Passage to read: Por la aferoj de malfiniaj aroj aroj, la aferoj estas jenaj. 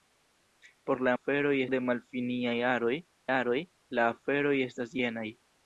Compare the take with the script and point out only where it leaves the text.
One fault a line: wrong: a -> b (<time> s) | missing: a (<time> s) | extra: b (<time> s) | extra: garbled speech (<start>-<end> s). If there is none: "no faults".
no faults